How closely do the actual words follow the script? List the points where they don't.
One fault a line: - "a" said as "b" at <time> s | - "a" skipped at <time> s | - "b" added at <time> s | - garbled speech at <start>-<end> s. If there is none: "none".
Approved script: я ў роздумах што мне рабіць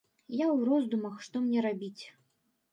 none